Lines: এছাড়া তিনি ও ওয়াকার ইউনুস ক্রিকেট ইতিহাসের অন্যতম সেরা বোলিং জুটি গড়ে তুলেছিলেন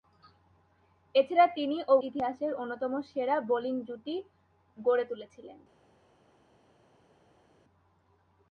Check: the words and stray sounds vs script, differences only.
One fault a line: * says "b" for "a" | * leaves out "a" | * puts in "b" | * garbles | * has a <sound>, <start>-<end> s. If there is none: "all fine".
* leaves out "ওয়াকার ইউনুস ক্রিকেট"